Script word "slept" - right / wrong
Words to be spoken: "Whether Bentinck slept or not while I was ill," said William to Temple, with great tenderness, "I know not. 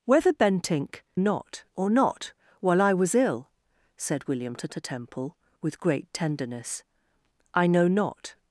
wrong